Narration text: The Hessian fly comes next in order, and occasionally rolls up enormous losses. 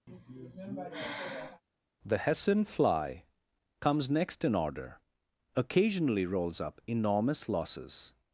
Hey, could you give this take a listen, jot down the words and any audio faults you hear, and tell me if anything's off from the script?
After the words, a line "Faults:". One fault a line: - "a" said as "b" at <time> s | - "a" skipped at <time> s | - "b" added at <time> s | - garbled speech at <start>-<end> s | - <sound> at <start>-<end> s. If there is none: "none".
The Hessian fly comes next in order, occasionally rolls up enormous losses.
Faults:
- sigh at 0.1-1.6 s
- "and" skipped at 5.0 s